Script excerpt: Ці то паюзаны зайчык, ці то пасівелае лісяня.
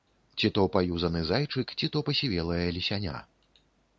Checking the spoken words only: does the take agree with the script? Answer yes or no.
yes